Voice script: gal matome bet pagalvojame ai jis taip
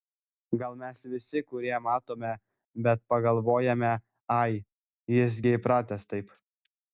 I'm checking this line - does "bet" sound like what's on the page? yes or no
yes